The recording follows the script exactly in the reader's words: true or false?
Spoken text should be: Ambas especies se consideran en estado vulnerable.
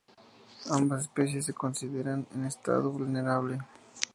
true